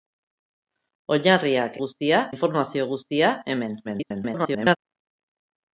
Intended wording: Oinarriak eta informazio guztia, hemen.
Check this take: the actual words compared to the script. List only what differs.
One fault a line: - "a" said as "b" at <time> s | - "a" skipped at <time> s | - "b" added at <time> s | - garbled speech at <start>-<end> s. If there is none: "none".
- "eta" said as "guztia" at 1.8 s
- garbled speech at 3.8-4.8 s